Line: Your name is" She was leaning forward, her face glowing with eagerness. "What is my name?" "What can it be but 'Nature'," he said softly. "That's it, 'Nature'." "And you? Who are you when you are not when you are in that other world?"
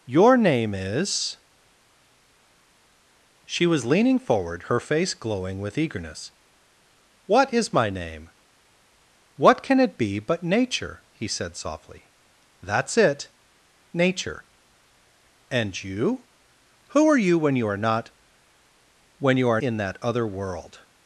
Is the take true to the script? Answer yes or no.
yes